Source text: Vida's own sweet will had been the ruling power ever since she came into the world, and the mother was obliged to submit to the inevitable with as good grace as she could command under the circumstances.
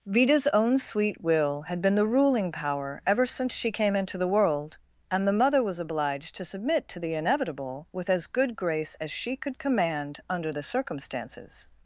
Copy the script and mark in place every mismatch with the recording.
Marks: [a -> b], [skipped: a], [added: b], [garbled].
Vida's own sweet will had been the ruling power ever since she came into the world, and the mother was obliged to submit to the inevitable with as good grace as she could command under the circumstances.